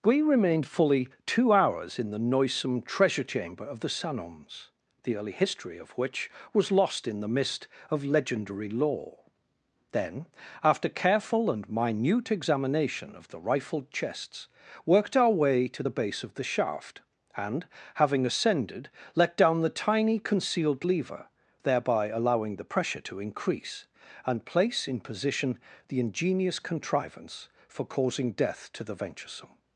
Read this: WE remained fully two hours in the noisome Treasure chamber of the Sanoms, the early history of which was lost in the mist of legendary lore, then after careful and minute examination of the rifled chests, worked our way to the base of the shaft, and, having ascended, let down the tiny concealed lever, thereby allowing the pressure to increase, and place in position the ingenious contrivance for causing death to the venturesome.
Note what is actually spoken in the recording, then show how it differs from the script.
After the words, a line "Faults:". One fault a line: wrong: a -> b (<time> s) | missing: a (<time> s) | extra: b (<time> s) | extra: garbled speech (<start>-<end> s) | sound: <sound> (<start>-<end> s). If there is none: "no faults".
WE remained fully two hours in the noisome Treasure chamber of the Sanoms, the early history of which was lost in the mist of legendary lore, then after careful and minute examination of the rifled chests, worked our way to the base of the shaft, and, having ascended, let down the tiny concealed lever, thereby allowing the pressure to increase, and place in position the ingenious contrivance for causing death to the venturesome.
Faults:
no faults